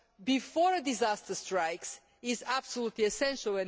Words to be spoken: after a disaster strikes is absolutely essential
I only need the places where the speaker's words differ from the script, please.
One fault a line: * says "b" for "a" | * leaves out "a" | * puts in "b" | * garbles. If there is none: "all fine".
* says "before" for "after"